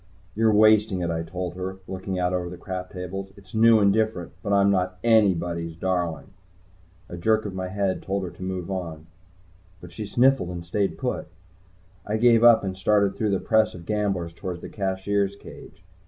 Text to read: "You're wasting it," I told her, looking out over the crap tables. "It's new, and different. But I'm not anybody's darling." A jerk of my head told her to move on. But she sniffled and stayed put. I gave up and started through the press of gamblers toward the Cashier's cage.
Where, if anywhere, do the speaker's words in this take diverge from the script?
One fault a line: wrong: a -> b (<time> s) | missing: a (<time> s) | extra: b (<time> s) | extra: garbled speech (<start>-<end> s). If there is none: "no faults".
no faults